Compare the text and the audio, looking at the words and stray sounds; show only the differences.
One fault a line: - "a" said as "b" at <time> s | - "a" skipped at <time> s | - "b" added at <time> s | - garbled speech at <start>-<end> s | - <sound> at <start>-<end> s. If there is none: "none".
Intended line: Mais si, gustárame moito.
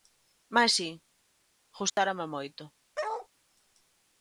- dropout at 1.9-2.0 s
- bark at 3.0-3.3 s